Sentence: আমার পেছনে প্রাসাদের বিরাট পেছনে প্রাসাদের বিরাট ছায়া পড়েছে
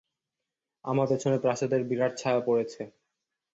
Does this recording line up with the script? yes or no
no